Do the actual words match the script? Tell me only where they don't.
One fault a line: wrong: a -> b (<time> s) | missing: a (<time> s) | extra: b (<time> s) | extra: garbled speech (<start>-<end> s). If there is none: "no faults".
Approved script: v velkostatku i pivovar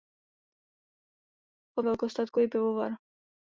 no faults